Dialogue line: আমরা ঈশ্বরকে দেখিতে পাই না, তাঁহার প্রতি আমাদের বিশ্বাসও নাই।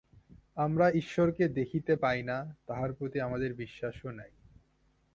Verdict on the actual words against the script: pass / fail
pass